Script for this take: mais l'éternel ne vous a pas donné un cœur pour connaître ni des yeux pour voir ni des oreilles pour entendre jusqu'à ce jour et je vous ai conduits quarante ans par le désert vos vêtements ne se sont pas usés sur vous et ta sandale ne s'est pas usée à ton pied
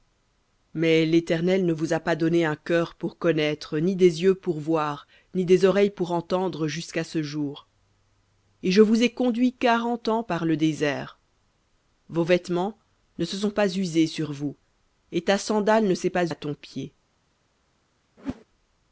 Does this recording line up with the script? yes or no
no